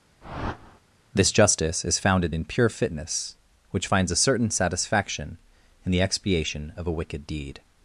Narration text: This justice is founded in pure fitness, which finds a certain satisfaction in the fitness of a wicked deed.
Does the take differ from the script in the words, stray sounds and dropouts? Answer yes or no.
yes